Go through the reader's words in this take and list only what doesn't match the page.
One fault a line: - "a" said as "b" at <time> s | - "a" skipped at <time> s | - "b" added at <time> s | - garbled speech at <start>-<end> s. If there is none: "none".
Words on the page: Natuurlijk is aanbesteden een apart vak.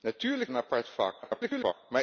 - "is aanbesteden" skipped at 0.5 s
- garbled speech at 1.2-1.7 s